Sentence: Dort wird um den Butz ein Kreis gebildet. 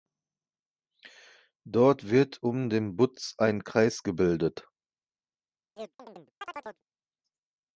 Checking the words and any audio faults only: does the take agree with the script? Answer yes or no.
no